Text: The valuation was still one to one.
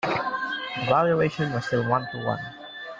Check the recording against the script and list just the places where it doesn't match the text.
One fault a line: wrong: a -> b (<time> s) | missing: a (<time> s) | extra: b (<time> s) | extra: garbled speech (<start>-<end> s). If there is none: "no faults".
no faults